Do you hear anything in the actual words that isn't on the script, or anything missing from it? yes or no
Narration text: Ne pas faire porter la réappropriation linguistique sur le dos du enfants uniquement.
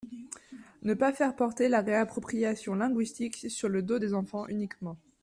yes